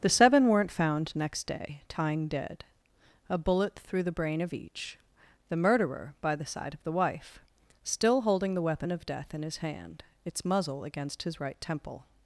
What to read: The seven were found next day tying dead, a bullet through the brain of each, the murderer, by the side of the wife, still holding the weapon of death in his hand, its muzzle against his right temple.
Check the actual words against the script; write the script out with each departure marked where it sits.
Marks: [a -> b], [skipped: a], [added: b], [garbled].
The seven [were -> weren't] found next day tying dead, a bullet through the brain of each, the murderer, by the side of the wife, still holding the weapon of death in his hand, its muzzle against his right temple.